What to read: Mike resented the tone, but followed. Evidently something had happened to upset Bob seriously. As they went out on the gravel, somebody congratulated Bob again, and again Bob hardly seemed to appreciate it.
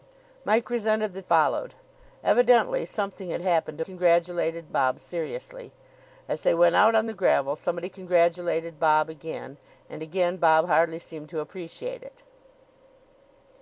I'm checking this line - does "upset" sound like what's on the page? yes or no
no